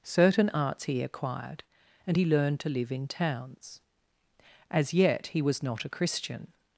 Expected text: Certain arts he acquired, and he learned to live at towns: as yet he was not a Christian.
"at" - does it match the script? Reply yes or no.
no